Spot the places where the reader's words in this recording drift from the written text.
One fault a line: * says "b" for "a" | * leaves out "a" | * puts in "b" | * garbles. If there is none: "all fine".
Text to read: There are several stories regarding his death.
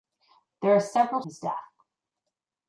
* leaves out "stories regarding"